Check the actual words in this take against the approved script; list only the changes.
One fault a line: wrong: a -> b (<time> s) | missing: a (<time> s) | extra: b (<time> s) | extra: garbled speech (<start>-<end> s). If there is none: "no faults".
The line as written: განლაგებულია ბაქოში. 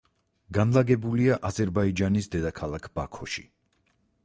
extra: აზერბაიჯანის დედაქალაქ (1.5 s)